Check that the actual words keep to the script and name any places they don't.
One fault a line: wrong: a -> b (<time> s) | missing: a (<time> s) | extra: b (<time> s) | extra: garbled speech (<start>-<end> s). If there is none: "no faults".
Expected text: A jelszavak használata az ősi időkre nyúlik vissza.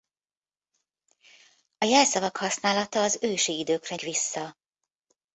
missing: nyúlik (4.0 s)